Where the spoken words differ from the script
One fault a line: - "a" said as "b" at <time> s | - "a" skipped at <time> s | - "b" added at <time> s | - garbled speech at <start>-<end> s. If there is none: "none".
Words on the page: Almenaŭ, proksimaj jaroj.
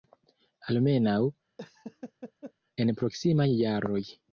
- "en" added at 2.8 s